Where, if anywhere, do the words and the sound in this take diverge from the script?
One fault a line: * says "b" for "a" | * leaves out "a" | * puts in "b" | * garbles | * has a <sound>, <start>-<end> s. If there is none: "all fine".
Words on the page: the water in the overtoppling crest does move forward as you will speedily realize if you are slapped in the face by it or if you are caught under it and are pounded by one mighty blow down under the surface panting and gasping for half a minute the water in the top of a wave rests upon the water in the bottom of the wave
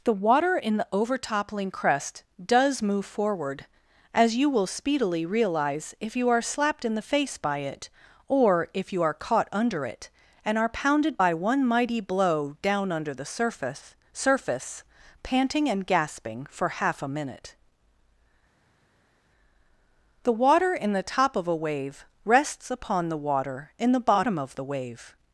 * puts in "surface"